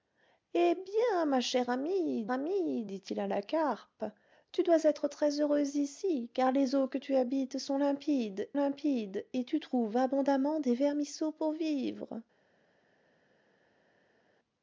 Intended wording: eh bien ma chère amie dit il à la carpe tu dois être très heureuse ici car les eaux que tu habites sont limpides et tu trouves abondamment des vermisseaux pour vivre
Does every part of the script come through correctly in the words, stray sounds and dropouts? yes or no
no